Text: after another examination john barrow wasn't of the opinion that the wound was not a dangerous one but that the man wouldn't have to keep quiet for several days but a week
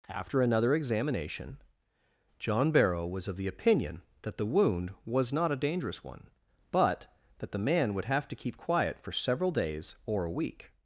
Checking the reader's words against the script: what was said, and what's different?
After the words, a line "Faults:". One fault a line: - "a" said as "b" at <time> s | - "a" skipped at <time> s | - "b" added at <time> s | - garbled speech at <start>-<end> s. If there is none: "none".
after another examination john barrow was of the opinion that the wound was not a dangerous one but that the man would have to keep quiet for several days or a week
Faults:
- "wasn't" said as "was" at 3.0 s
- "wouldn't" said as "would" at 7.9 s
- "but" said as "or" at 10.1 s